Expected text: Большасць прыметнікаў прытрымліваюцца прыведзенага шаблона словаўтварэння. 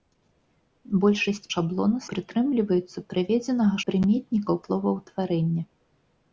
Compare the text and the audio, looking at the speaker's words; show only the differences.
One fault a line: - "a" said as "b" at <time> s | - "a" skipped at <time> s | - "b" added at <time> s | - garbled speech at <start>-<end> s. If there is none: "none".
- "прыметнікаў" said as "шаблона" at 1.5 s
- "шаблона" said as "прыметнікаў" at 3.9 s